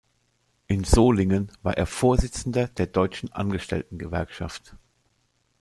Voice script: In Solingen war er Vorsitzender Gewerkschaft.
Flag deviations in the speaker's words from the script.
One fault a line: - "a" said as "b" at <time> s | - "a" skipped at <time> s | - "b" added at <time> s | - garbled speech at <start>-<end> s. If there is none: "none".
- "der Deutschen Angestellten" added at 2.8 s